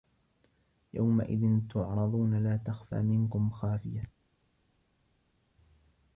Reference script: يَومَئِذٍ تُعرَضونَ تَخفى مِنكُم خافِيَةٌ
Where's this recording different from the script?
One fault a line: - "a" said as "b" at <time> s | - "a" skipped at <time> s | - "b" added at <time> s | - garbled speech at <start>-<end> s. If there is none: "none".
- "لا" added at 2.4 s